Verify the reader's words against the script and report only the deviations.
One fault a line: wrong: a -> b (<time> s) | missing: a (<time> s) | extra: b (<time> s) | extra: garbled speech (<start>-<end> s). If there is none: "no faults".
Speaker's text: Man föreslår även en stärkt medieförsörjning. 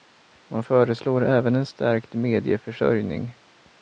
no faults